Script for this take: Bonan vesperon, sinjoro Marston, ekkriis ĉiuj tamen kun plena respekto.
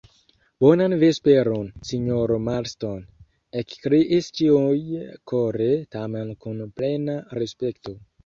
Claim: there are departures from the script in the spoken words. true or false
true